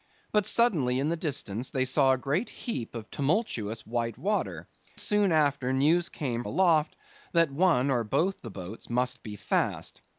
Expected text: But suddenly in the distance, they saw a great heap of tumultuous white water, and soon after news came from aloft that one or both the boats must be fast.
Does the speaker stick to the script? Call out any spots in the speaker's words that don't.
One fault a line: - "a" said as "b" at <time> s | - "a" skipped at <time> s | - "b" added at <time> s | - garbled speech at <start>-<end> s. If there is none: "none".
- "and" skipped at 4.7 s
- "from" skipped at 6.4 s